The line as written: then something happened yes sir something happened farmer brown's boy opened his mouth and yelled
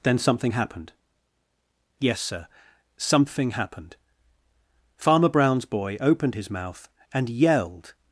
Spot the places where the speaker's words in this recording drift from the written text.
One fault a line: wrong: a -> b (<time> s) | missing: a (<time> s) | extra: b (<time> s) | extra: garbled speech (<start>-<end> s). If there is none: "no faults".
no faults